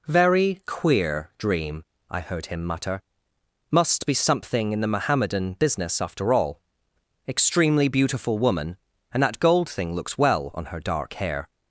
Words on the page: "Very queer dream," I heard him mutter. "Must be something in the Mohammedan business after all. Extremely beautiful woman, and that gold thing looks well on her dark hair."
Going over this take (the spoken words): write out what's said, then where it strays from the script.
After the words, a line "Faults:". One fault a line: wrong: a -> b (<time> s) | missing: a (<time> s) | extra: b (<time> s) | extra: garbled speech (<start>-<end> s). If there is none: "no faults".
"Very queer dream," I heard him mutter. "Must be something in the Mohammedan business after all. Extremely beautiful woman, and that gold thing looks well on her dark hair."
Faults:
no faults